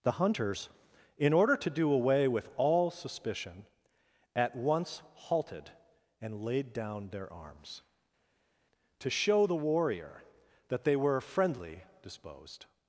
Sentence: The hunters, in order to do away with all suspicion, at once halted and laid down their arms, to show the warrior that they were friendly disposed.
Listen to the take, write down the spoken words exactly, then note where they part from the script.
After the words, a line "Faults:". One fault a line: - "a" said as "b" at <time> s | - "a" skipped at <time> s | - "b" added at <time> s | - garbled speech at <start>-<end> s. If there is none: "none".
The hunters, in order to do away with all suspicion, at once halted and laid down their arms, to show the warrior that they were friendly disposed.
Faults:
none